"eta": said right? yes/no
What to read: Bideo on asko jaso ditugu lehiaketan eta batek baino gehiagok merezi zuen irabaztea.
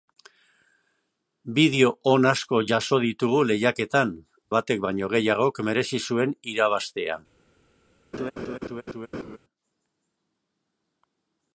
no